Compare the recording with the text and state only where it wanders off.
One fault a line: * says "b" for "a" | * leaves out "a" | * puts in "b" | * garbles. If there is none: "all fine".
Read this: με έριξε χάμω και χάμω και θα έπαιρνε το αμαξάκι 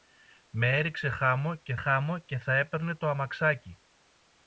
all fine